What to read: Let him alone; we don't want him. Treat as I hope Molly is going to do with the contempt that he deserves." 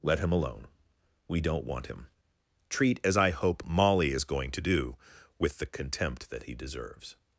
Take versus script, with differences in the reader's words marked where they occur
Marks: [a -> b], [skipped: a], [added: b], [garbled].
Let him alone; we don't want him. Treat as I hope Molly is going to do with the contempt that he deserves."